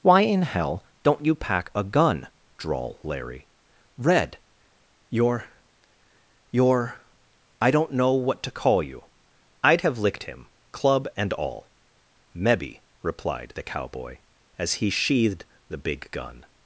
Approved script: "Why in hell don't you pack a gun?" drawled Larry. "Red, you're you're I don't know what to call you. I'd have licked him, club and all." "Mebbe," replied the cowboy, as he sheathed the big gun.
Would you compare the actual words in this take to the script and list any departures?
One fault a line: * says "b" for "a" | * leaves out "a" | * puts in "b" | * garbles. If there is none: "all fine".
* says "drawl" for "drawled"